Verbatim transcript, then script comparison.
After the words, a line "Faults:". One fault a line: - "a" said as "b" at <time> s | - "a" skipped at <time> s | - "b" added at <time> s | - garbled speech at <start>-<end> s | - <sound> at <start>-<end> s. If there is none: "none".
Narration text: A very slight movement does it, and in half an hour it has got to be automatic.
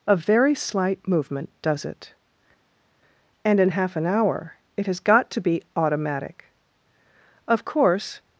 A very slight movement does it, and in half an hour it has got to be automatic. Of course
Faults:
- "Of course" added at 7.5 s